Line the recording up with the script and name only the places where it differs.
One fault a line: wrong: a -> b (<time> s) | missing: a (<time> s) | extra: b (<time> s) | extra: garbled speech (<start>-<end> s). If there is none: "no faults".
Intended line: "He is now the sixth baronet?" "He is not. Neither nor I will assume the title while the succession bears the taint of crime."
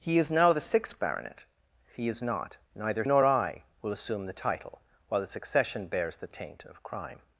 no faults